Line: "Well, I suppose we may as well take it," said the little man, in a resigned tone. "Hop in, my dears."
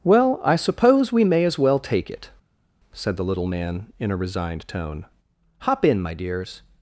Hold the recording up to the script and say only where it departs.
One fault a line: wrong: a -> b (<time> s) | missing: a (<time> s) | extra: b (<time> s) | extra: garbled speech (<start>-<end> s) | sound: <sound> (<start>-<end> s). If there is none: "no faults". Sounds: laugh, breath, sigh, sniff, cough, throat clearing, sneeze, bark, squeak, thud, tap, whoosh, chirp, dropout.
no faults